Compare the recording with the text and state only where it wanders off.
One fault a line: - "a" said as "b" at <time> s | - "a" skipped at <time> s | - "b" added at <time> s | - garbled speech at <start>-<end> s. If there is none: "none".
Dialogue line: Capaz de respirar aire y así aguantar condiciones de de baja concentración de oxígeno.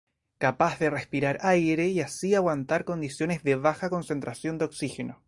- "de" skipped at 3.5 s